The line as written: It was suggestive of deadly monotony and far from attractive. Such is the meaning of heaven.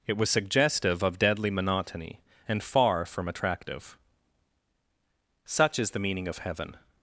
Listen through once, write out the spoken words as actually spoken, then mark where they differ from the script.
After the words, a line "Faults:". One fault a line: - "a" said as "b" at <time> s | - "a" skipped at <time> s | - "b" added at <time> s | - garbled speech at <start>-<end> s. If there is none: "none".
It was suggestive of deadly monotony and far from attractive. Such is the meaning of heaven.
Faults:
none